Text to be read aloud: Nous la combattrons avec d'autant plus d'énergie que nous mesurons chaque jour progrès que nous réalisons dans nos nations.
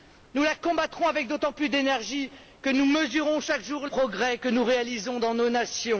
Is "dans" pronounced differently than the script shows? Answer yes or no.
no